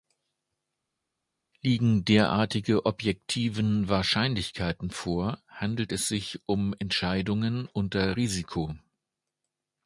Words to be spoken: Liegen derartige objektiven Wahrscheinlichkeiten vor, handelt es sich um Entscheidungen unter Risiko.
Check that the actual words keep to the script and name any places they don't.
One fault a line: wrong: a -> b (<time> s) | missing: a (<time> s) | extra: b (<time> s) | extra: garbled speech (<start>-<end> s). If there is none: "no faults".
no faults